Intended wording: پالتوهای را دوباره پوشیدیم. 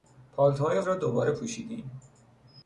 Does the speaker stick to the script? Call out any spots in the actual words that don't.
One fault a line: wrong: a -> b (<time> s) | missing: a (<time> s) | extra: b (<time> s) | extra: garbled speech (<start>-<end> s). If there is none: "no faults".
no faults